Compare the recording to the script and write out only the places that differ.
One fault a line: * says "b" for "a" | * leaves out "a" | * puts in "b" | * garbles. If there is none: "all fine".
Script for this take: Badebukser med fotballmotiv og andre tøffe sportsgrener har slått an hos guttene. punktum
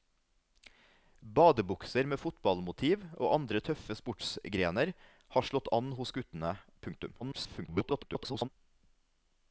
* garbles